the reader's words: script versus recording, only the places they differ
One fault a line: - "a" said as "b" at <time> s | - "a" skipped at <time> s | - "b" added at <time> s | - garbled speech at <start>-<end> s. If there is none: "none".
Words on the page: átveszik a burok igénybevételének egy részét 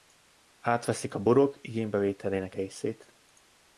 - "egy" skipped at 2.6 s